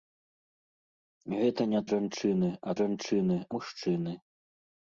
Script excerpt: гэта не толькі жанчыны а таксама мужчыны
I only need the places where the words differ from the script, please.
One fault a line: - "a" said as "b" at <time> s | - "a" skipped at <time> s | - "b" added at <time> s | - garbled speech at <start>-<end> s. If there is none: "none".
- "толькі" skipped at 1.8 s
- "таксама" said as "жанчыны" at 2.8 s